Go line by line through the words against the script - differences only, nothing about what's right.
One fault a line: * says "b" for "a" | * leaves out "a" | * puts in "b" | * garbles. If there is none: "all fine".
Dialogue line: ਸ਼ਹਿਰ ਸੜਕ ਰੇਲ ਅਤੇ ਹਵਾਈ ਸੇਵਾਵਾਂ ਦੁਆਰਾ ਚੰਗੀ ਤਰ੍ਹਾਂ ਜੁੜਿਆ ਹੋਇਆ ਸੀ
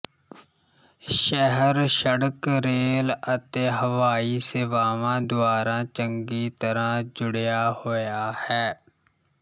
* says "ਹੈ" for "ਸੀ"